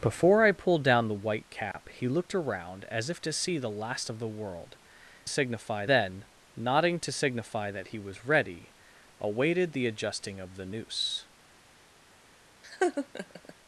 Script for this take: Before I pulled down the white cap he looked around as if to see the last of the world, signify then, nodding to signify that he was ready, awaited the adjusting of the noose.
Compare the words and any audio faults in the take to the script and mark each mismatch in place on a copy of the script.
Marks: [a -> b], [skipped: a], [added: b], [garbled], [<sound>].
Before I pulled down the white cap [dropout] he looked around as if to see the last of the world, signify then, nodding to signify that he was ready, awaited the adjusting of the noose. [laugh]